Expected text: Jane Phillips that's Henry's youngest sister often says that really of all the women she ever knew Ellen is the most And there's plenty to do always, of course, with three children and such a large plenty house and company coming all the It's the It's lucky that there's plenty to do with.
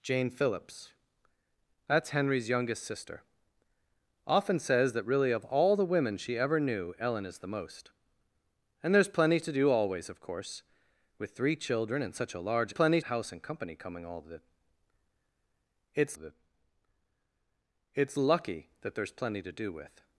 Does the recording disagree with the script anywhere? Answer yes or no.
no